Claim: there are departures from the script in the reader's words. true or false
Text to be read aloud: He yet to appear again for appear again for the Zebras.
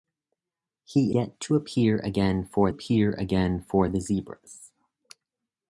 false